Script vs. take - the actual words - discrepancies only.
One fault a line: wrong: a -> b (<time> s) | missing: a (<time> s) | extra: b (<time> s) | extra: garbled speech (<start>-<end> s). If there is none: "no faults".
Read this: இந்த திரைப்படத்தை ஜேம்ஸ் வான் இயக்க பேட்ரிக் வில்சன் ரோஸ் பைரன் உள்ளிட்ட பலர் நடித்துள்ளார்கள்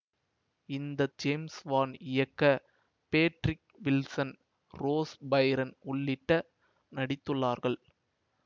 missing: திரைப்படத்தை (1.1 s)
missing: பலர் (6.4 s)